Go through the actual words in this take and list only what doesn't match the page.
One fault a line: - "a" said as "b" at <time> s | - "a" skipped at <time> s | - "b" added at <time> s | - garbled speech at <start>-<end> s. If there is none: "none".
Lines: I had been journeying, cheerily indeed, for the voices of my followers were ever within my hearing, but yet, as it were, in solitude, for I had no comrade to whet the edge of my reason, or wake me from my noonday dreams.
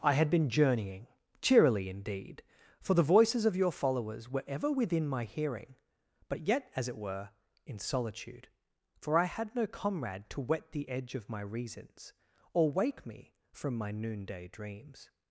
- "my" said as "your" at 3.5 s
- "reason" said as "reasons" at 11.4 s